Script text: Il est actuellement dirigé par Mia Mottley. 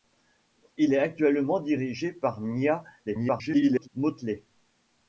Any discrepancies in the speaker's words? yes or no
yes